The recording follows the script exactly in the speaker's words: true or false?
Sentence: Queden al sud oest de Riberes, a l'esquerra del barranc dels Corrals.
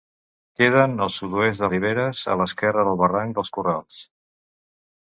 true